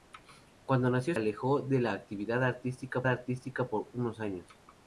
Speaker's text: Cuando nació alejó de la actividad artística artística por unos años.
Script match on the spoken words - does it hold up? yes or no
yes